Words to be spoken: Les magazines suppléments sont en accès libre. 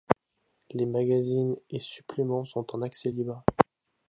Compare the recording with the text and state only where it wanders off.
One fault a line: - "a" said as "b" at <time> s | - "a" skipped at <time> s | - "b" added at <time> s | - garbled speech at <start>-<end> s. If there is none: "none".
- "et" added at 1.7 s